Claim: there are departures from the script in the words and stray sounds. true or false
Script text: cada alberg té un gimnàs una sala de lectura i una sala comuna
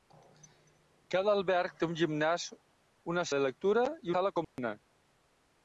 true